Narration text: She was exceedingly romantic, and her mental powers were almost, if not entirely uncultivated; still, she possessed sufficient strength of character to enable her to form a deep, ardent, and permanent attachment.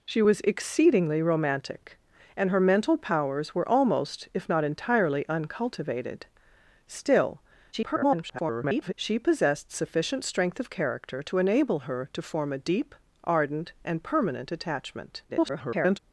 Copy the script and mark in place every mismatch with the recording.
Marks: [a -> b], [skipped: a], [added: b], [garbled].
She was exceedingly romantic, and her mental powers were almost, if not entirely uncultivated; still, [garbled] she possessed sufficient strength of character to enable her to form a deep, ardent, and permanent attachment. [garbled]